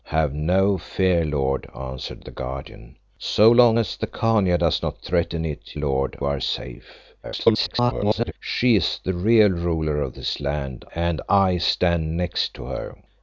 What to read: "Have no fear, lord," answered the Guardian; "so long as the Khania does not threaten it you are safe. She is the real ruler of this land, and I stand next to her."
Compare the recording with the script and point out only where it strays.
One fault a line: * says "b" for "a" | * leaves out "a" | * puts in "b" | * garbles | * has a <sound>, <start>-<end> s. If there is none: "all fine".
* says "lord" for "you"
* garbles